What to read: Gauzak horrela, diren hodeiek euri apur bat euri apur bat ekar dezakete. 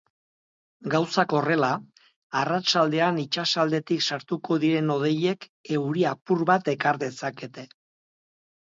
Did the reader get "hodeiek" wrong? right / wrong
wrong